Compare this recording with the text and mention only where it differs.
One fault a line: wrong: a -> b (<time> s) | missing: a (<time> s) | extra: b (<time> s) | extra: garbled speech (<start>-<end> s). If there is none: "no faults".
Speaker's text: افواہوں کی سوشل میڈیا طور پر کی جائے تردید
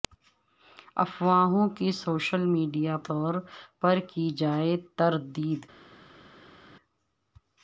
no faults